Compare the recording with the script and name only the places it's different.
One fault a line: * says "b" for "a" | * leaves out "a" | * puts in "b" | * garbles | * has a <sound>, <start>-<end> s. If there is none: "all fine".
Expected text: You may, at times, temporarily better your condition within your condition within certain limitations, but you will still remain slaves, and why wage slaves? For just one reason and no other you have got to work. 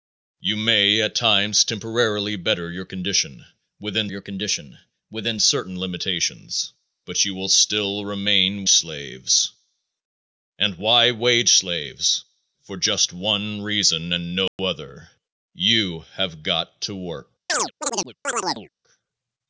* has a dropout, 14.5-14.6 s
* has a chirp, 17.5-18.7 s